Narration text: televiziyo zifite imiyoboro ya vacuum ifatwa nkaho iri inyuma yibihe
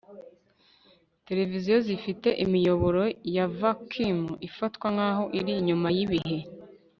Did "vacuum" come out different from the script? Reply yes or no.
no